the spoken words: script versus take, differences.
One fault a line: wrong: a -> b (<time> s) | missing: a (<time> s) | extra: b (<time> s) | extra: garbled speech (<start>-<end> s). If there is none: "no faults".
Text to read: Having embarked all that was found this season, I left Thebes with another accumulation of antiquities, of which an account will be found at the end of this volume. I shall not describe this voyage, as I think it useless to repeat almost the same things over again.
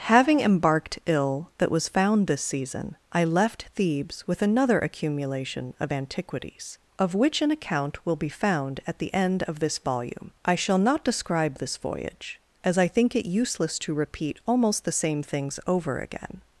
wrong: all -> ill (1.1 s)